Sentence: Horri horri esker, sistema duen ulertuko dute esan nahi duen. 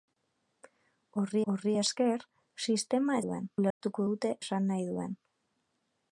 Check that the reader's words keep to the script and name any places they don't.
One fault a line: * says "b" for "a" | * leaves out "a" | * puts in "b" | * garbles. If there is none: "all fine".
all fine